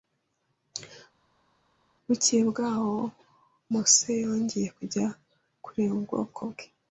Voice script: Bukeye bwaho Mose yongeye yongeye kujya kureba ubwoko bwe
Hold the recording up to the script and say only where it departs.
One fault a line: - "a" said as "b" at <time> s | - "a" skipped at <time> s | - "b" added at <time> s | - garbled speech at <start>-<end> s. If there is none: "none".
- "yongeye" skipped at 4.7 s